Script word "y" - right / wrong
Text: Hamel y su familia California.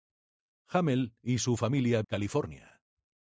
right